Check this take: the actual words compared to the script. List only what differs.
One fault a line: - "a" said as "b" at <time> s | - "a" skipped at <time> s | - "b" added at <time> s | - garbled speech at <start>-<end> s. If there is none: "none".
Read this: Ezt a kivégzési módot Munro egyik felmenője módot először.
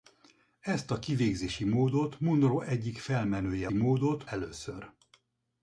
none